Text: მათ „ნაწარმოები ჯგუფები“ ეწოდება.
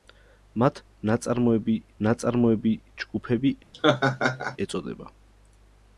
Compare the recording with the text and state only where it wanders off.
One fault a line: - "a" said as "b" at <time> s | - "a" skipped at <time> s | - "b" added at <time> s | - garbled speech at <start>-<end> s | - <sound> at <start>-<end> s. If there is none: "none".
- "ნაწარმოები" added at 2.1 s
- laugh at 3.7-4.6 s